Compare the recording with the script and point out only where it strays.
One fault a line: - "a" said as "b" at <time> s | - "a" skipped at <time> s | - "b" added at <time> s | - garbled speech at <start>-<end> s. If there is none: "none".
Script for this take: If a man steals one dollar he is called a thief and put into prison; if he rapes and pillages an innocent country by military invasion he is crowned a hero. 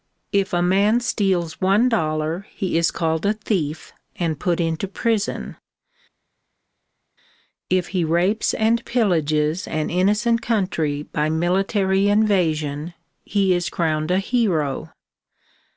none